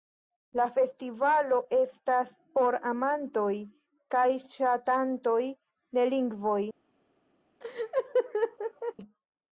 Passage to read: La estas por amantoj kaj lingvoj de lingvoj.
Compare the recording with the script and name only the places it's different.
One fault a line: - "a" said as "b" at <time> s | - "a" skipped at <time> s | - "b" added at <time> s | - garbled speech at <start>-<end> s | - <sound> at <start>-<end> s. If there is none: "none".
- "festivalo" added at 0.8 s
- "lingvoj" said as "ŝatantoj" at 4.6 s
- laugh at 7.6-8.9 s